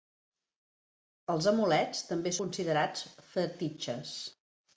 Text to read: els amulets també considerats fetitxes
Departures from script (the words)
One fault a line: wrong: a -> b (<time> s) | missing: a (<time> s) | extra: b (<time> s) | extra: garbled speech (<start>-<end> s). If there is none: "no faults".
no faults